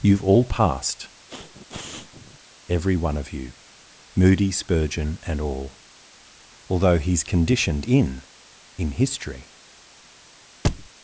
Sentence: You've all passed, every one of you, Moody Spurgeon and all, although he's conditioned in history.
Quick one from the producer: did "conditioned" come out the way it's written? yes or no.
yes